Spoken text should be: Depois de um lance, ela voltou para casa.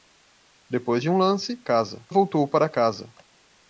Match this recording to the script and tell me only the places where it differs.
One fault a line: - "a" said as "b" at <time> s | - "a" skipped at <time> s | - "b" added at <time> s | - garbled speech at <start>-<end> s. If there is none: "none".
- "ela" said as "casa" at 1.6 s